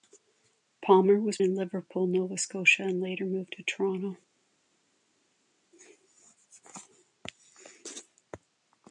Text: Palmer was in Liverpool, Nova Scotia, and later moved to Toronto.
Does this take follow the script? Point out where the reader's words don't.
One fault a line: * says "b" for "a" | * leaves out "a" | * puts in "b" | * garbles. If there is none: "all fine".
all fine